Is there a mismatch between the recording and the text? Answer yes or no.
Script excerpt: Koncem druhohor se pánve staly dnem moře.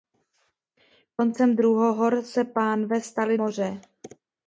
yes